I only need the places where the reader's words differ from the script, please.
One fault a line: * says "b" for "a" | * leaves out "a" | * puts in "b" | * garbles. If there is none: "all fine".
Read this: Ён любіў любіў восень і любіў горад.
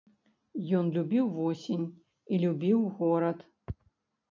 * leaves out "любіў"